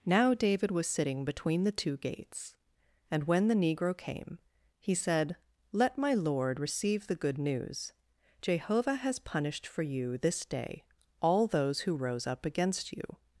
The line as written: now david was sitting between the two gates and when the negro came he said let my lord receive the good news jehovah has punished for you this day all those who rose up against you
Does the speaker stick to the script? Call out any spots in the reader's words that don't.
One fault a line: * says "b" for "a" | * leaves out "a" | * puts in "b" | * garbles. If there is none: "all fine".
all fine